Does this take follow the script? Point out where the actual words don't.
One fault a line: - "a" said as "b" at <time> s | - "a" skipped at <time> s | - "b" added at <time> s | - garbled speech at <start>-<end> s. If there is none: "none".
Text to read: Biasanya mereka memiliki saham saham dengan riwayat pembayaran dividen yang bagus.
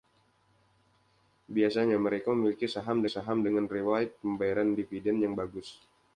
none